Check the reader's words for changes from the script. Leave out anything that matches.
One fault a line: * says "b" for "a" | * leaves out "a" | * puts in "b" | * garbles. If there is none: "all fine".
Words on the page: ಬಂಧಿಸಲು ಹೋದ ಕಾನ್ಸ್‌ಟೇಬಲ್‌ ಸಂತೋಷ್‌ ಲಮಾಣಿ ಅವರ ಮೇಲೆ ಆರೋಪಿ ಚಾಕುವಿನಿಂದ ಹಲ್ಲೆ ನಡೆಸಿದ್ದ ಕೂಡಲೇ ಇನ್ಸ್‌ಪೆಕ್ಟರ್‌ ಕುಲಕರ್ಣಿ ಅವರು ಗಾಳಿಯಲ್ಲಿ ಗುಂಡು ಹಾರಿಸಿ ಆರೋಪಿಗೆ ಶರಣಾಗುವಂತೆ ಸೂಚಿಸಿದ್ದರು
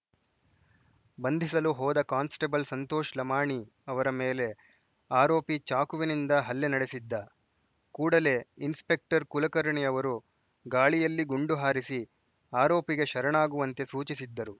all fine